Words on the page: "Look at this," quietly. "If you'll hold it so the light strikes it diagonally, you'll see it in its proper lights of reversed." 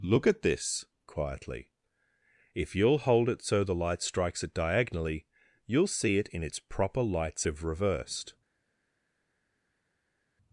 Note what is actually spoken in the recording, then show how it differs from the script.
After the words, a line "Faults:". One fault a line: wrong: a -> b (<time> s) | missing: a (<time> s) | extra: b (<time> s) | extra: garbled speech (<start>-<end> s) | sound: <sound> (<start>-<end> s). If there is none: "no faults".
"Look at this," quietly. "If you'll hold it so the light strikes it diagonally, you'll see it in its proper lights of reversed."
Faults:
no faults